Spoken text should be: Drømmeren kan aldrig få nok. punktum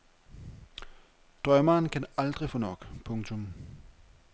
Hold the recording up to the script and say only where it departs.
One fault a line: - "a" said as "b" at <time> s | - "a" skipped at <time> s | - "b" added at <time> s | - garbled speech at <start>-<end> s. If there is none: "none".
none